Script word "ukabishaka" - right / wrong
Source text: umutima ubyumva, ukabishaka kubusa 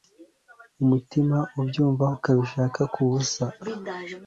right